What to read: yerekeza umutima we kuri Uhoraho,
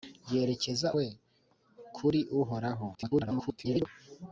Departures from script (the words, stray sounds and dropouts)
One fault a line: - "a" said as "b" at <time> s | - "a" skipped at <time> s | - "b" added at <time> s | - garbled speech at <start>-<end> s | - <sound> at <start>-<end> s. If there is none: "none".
- "umutima" skipped at 0.9 s
- garbled speech at 2.9-3.9 s